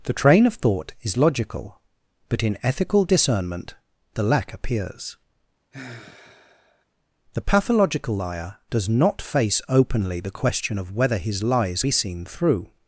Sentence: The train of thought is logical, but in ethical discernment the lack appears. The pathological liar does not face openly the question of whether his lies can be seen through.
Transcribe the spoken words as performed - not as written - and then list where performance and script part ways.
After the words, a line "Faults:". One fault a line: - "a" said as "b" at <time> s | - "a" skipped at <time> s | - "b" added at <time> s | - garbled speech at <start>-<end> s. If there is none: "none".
The train of thought is logical, but in ethical discernment the lack appears. The pathological liar does not face openly the question of whether his lies be seen through.
Faults:
- "can" skipped at 11.8 s